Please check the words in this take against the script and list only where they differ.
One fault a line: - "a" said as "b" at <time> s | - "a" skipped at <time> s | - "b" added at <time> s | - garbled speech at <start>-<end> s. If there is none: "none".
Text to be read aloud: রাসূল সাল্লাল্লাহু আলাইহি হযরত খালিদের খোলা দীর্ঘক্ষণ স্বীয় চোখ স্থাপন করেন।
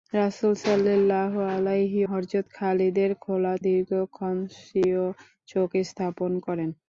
none